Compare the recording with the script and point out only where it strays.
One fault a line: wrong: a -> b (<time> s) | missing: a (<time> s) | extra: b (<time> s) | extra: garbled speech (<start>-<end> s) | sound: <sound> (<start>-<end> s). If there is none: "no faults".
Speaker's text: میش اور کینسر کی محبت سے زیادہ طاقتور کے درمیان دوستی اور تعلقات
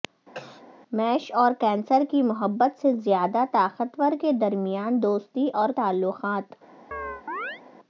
sound: cough (0.3-0.6 s)
sound: chirp (6.9-7.6 s)